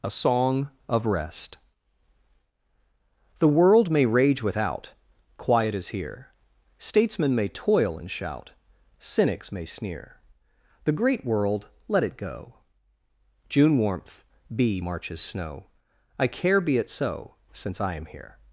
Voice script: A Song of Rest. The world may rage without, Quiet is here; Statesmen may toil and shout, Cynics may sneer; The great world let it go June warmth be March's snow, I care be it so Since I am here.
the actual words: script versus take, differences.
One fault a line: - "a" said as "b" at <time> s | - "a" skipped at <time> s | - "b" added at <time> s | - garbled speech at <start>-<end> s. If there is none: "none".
none